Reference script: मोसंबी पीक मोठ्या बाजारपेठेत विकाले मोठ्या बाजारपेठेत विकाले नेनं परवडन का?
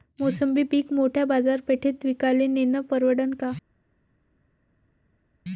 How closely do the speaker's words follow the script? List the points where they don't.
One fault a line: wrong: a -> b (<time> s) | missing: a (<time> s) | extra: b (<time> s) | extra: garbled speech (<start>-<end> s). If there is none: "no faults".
missing: मोठ्या बाजारपेठेत विकाले (2.5 s)